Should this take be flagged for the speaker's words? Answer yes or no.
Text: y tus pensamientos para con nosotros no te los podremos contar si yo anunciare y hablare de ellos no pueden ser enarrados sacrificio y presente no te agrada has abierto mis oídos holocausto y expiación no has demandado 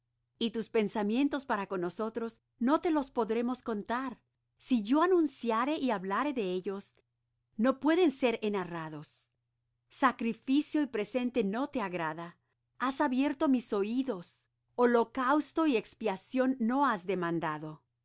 no